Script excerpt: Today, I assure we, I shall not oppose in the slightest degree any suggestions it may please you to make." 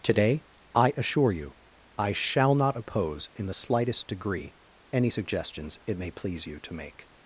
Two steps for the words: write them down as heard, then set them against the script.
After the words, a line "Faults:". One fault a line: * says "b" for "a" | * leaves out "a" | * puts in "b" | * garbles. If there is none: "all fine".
Today, I assure you, I shall not oppose in the slightest degree any suggestions it may please you to make."
Faults:
* says "you" for "we"